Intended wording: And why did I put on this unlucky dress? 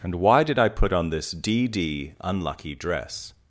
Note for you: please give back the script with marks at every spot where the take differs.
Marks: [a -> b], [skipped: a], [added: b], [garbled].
And why did I put on this [added: d d] unlucky dress?